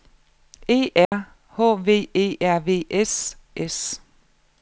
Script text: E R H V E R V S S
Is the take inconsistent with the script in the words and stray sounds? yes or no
yes